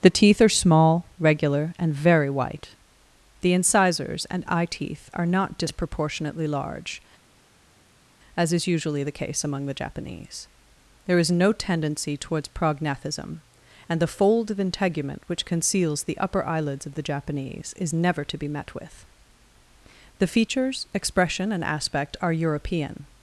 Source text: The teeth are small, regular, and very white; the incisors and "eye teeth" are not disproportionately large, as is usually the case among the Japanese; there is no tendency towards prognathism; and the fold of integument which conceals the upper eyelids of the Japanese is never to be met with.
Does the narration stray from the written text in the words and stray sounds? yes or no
yes